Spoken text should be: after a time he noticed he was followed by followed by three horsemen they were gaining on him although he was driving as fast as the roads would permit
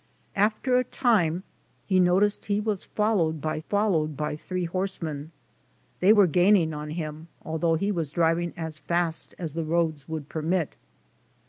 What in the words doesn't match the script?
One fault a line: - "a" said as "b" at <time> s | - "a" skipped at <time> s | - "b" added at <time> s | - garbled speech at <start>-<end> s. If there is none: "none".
none